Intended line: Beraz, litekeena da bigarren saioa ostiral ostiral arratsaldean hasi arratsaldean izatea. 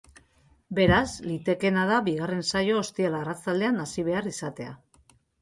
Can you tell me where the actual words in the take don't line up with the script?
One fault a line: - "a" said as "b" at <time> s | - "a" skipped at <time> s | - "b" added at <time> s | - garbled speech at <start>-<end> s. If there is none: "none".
- "ostiral" skipped at 3.2 s
- "arratsaldean" said as "behar" at 4.1 s